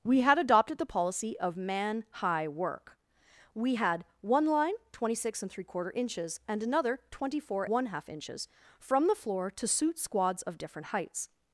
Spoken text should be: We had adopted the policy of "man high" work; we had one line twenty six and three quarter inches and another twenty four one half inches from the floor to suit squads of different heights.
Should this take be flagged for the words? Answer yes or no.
no